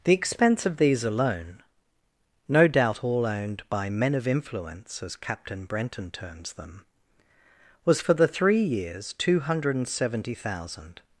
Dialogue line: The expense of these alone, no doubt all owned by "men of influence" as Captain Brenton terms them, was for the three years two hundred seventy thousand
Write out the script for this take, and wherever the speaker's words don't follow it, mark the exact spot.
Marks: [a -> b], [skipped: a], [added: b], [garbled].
The expense of these alone, no doubt all owned by "men of influence" as Captain Brenton terms them, was for the three years two hundred [added: and] seventy thousand